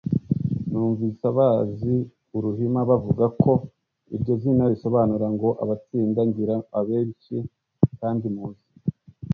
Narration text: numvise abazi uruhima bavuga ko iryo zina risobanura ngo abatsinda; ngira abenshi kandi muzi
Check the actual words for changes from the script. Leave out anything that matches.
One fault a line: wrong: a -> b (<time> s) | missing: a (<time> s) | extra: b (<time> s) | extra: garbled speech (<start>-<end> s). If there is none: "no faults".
no faults